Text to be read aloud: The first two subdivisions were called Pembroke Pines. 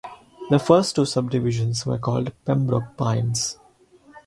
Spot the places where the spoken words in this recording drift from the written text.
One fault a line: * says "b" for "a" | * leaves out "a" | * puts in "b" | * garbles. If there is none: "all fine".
all fine